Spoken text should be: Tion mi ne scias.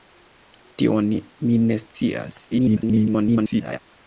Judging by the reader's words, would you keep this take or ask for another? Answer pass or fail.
fail